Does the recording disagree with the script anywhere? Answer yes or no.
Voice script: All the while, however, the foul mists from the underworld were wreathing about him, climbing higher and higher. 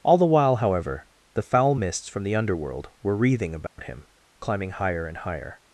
no